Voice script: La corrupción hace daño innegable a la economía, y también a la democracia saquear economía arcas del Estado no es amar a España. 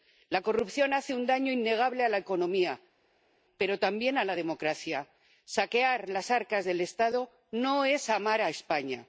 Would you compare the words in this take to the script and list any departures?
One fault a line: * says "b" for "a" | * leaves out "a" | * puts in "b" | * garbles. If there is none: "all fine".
* puts in "un"
* says "pero" for "y"
* says "las" for "economía"